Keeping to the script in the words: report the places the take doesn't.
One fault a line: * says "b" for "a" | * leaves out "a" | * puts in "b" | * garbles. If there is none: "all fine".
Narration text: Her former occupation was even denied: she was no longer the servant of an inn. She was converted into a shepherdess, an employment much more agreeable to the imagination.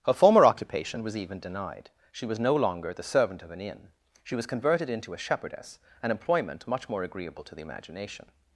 all fine